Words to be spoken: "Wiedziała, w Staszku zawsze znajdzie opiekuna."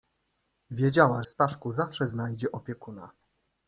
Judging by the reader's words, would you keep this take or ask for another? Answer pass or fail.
pass